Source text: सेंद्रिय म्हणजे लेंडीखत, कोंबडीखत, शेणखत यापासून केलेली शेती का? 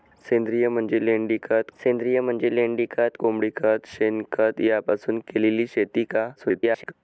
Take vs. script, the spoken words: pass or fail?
fail